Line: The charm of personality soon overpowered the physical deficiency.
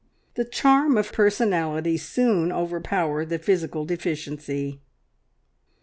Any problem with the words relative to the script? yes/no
no